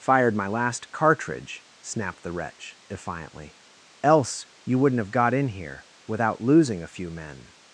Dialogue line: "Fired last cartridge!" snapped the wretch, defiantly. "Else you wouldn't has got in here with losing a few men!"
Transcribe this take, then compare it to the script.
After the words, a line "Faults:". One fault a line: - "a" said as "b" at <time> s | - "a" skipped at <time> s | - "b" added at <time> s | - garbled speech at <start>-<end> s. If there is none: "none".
"Fired my last cartridge!" snapped the wretch, defiantly. "Else you wouldn't have got in here without losing a few men!"
Faults:
- "my" added at 0.3 s
- "has" said as "have" at 5.0 s
- "with" said as "without" at 6.1 s